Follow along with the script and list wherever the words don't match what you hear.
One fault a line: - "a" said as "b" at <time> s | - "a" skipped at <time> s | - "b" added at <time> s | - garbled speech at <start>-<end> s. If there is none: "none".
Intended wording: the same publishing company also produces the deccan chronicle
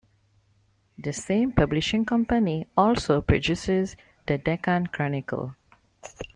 none